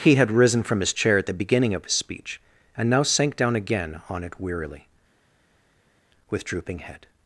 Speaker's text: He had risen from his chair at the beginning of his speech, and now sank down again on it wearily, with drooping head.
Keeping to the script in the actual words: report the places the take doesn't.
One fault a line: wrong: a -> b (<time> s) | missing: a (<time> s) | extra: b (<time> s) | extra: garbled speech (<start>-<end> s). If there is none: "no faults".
no faults